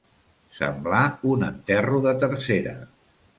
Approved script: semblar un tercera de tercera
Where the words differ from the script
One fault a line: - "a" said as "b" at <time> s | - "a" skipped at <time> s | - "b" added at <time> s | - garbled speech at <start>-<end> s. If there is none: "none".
- "tercera" said as "enterro" at 1.5 s